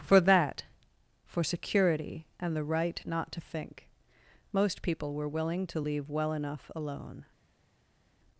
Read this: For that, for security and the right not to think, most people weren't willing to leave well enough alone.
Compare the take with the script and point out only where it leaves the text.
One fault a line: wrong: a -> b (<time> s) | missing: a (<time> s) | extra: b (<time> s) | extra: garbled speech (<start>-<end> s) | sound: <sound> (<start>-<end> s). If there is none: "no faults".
wrong: weren't -> were (5.1 s)